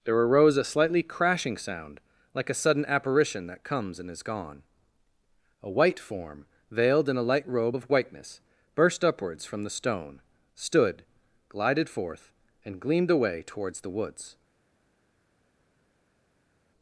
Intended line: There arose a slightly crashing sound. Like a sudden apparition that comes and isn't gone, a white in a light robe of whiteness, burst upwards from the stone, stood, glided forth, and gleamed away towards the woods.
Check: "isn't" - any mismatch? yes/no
yes